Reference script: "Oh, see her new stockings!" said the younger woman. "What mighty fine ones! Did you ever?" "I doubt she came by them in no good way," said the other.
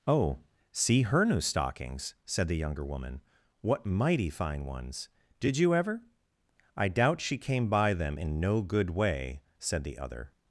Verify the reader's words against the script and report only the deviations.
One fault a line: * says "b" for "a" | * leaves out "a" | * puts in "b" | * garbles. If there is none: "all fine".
all fine